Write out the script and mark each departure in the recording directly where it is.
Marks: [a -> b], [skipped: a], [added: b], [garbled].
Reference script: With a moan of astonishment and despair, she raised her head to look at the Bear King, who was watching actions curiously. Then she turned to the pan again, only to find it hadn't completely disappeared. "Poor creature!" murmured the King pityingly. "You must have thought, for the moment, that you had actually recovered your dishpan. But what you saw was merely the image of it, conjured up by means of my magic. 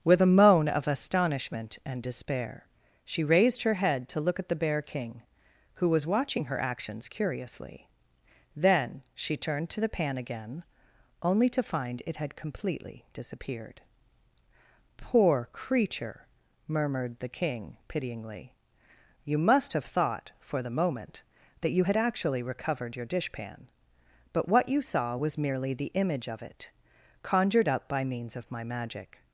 With a moan of astonishment and despair, she raised her head to look at the Bear King, who was watching [added: her] actions curiously. Then she turned to the pan again, only to find it [hadn't -> had] completely disappeared. "Poor creature!" murmured the King pityingly. "You must have thought, for the moment, that you had actually recovered your dishpan. But what you saw was merely the image of it, conjured up by means of my magic.